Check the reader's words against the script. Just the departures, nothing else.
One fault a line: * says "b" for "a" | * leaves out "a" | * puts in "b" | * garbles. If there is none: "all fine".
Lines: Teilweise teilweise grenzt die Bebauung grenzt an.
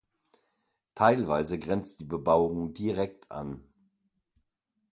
* leaves out "teilweise"
* says "direkt" for "grenzt"